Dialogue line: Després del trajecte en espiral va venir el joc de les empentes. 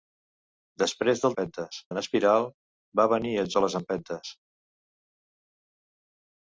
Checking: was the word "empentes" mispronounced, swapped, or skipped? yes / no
no